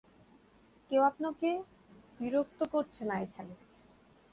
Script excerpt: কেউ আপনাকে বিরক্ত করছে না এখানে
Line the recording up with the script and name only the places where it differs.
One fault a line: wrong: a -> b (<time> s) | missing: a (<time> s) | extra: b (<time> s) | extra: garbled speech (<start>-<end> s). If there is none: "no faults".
no faults